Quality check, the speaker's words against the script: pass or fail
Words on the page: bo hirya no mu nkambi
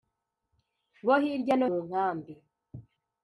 pass